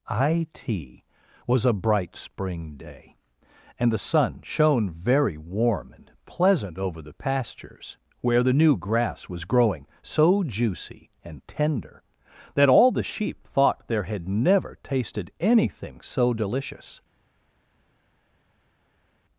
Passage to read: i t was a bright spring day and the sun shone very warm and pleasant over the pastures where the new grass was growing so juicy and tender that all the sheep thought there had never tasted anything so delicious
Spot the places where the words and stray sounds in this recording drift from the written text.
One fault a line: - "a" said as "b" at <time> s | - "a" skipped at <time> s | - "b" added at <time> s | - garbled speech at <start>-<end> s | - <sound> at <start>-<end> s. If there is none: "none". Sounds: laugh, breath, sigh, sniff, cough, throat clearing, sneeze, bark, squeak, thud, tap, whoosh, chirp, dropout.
none